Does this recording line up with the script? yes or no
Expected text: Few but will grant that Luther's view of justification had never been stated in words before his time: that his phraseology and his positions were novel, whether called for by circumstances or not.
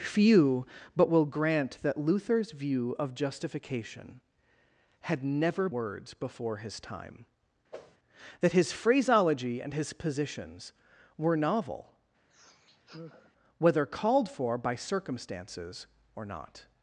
no